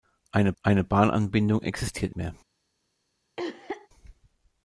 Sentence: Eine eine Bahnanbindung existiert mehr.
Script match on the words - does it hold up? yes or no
yes